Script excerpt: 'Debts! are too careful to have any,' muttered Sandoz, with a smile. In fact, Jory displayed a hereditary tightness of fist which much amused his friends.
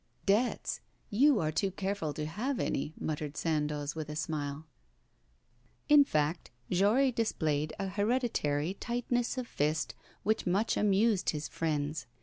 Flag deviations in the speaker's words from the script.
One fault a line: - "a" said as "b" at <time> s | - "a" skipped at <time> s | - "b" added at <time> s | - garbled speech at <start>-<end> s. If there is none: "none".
- "you" added at 1.1 s